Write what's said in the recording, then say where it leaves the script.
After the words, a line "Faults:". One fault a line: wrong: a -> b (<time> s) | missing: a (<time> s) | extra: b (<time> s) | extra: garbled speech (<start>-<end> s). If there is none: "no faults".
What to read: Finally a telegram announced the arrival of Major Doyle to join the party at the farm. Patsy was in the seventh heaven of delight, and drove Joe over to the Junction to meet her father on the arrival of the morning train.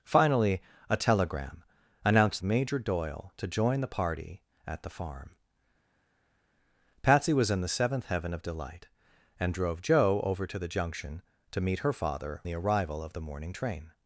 Finally a telegram announced Major Doyle to join the party at the farm. Patsy was in the seventh heaven of delight, and drove Joe over to the Junction to meet her father the arrival of the morning train.
Faults:
missing: the arrival of (2.4 s)
missing: on (12.4 s)